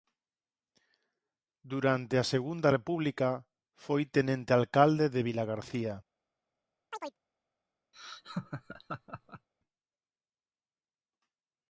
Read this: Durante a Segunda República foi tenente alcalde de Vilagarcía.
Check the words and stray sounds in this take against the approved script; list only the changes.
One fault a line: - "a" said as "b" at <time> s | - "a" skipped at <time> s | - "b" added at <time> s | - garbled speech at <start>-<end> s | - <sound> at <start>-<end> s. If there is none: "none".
- chirp at 6.9-7.2 s
- laugh at 7.9-9.5 s